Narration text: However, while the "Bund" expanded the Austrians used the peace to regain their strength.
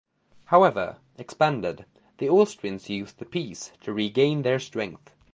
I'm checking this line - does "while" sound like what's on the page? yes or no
no